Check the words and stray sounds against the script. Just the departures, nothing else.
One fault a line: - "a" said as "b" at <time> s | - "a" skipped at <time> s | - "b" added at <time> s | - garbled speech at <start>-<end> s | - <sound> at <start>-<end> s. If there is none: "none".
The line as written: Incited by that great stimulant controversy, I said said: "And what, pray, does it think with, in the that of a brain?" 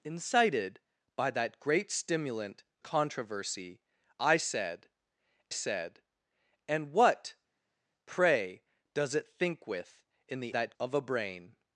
none